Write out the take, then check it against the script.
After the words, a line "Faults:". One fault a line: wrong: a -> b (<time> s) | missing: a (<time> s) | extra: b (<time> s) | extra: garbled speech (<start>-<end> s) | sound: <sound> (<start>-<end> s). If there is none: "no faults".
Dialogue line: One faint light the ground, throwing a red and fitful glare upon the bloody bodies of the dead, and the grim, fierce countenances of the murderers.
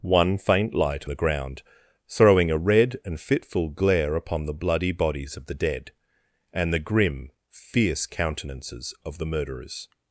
One faint light the ground, throwing a red and fitful glare upon the bloody bodies of the dead, and the grim, fierce countenances of the murderers.
Faults:
no faults